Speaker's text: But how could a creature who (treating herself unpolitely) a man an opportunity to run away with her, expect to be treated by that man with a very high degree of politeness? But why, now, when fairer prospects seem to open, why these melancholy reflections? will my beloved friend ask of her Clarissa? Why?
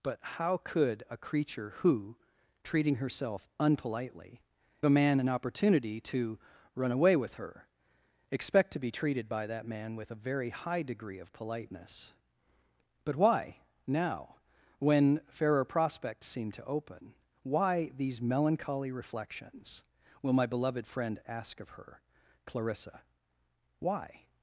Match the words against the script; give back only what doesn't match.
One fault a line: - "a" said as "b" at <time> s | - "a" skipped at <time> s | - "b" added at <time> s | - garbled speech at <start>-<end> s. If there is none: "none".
none